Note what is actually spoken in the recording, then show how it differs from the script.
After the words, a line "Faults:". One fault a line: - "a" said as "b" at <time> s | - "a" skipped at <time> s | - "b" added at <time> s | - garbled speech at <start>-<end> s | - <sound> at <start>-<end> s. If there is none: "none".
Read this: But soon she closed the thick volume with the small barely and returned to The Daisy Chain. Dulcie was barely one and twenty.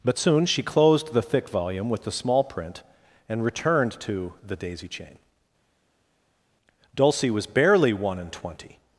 But soon she closed the thick volume with the small print and returned to The Daisy Chain. Dulcie was barely one and twenty.
Faults:
- "barely" said as "print" at 2.4 s